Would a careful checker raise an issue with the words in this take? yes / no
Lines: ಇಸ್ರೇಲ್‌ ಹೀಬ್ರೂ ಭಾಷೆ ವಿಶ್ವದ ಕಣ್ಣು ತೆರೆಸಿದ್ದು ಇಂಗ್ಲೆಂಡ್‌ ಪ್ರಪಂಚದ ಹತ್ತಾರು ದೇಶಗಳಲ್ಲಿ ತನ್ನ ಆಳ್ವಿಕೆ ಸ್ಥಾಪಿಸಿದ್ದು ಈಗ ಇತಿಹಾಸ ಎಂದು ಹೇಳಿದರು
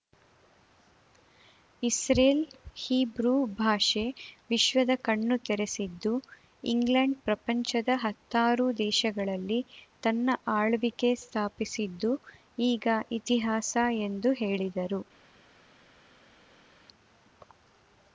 no